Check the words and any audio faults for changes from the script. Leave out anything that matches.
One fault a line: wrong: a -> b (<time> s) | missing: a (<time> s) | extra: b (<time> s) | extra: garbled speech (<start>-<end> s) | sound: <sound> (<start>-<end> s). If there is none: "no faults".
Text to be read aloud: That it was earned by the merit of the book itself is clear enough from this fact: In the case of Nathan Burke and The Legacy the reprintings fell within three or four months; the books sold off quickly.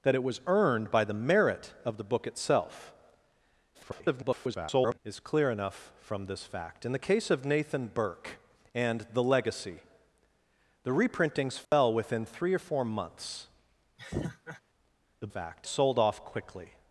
extra: garbled speech (3.7-5.0 s)
sound: dropout (11.6-11.7 s)
sound: laugh (14.0-14.6 s)
wrong: books -> fact (15.3 s)